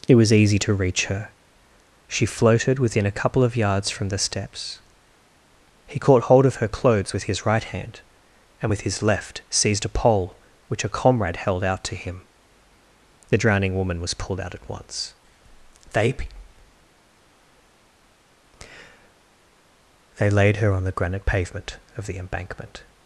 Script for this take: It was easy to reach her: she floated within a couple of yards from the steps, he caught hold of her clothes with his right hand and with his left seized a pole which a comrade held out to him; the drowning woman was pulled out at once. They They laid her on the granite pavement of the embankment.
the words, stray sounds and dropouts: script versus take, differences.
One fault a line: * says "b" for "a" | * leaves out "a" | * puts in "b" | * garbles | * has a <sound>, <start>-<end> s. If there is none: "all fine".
all fine